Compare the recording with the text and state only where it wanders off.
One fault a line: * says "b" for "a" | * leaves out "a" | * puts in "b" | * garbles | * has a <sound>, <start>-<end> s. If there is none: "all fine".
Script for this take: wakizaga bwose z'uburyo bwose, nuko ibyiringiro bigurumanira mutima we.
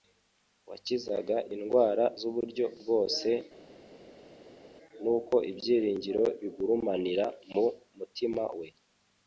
* says "indwara" for "bwose"
* puts in "mu"